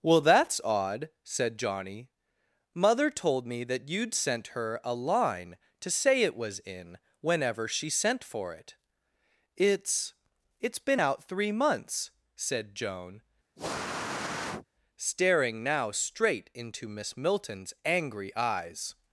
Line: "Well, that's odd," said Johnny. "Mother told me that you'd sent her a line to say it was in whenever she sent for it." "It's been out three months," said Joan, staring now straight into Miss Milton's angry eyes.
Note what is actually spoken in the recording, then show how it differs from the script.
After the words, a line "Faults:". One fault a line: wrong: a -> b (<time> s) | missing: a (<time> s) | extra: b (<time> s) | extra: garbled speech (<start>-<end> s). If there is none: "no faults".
"Well, that's odd," said Johnny. "Mother told me that you'd sent her a line to say it was in whenever she sent for it." "It's It's been out three months," said Joan, staring now straight into Miss Milton's angry eyes.
Faults:
extra: It's (10.6 s)